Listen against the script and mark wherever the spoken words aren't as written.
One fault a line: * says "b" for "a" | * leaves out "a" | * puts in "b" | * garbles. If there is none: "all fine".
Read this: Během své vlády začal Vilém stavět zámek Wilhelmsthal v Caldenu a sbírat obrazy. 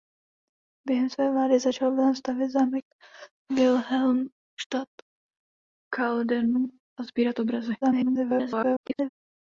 * garbles